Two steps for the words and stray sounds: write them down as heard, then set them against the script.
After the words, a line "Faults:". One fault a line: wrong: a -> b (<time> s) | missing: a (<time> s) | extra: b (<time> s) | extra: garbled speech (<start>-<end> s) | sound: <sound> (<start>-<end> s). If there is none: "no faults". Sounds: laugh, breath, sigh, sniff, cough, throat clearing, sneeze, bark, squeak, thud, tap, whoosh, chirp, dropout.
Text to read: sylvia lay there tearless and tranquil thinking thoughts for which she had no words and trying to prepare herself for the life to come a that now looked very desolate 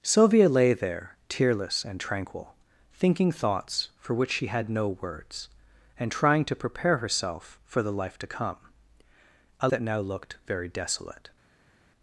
sylvia lay there tearless and tranquil thinking thoughts for which she had no words and trying to prepare herself for the life to come a that now looked very desolate
Faults:
no faults